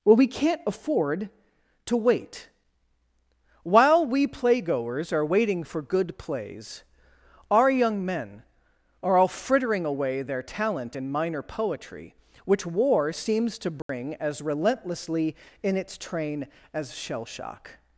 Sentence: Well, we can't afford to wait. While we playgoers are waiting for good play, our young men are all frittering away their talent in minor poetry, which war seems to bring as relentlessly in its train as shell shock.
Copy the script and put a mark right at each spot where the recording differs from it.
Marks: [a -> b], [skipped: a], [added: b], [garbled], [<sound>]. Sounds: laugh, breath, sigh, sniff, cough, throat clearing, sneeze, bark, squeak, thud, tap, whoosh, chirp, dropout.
Well, we can't afford to wait. While we playgoers are waiting for good [play, -> plays] our young men are all frittering away their talent in minor poetry, which war seems to bring [dropout] as relentlessly in its train as shell shock.